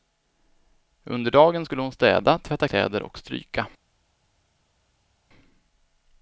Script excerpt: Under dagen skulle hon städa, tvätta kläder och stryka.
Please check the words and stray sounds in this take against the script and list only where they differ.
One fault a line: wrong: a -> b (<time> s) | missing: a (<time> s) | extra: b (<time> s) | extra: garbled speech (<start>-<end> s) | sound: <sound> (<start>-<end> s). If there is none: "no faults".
no faults